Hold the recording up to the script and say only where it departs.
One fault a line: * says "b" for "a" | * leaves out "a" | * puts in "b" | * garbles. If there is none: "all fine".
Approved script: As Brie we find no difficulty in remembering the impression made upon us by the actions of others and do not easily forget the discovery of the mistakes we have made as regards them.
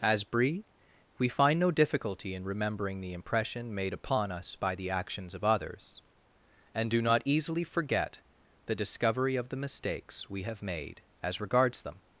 all fine